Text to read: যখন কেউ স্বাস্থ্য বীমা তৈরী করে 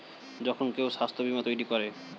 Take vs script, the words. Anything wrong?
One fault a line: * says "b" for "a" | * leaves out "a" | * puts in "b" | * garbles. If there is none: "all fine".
all fine